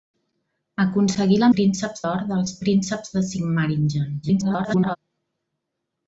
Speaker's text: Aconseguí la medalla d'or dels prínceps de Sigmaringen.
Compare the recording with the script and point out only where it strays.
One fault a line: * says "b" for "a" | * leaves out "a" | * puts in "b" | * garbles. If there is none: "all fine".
* says "prínceps" for "medalla"
* garbles